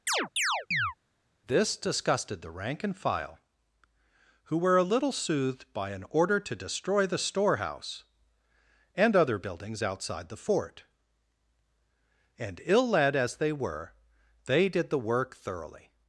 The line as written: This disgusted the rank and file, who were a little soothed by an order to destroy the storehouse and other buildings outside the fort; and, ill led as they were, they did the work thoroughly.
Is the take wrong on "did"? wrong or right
right